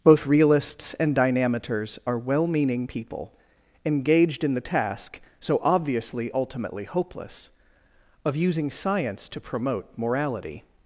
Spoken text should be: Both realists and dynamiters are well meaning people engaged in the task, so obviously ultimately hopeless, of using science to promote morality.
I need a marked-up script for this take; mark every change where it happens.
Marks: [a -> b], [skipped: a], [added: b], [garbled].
Both realists and dynamiters are well meaning people engaged in the task, so obviously ultimately hopeless, of using science to promote morality.